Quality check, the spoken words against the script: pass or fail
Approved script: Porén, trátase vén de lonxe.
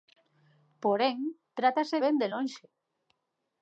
pass